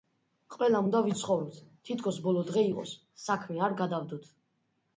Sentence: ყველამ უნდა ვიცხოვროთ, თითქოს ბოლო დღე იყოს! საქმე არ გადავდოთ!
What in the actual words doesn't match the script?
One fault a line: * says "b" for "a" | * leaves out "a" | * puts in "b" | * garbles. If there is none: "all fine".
all fine